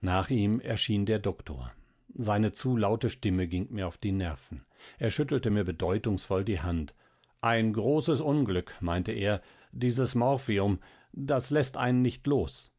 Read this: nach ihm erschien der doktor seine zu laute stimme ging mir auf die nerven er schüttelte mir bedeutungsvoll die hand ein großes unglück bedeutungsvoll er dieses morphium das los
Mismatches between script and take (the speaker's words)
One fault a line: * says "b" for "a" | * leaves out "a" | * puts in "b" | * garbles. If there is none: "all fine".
* says "meinte" for "bedeutungsvoll"
* puts in "läßt einen nicht"